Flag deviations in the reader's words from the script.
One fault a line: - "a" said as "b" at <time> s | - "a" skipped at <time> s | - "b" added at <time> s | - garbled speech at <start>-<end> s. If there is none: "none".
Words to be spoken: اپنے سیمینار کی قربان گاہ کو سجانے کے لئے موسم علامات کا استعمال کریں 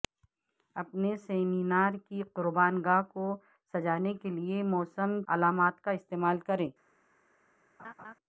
none